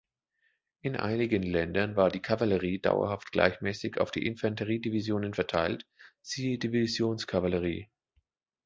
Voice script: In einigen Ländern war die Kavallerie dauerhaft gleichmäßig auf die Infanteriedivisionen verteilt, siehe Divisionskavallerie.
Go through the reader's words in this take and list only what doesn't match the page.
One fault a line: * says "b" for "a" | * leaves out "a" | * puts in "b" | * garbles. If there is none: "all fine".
all fine